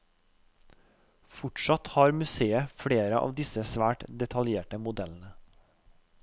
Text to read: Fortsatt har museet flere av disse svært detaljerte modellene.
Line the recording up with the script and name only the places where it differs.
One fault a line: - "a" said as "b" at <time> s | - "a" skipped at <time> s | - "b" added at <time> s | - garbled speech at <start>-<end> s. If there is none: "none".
none